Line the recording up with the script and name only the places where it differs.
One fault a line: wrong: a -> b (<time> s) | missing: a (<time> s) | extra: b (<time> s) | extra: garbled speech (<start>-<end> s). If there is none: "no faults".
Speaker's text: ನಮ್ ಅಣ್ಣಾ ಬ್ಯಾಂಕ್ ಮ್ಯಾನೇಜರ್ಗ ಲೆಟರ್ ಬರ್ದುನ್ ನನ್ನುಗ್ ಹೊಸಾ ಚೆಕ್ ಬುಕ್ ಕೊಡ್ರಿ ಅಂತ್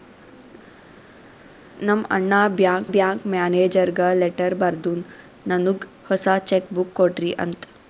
extra: ಬ್ಯಾಂಕ್ (2.9 s)